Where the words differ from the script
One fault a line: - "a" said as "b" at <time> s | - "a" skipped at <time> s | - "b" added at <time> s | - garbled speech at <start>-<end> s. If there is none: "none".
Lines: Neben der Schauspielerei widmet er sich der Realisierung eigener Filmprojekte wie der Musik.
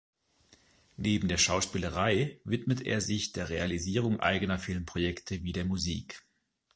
none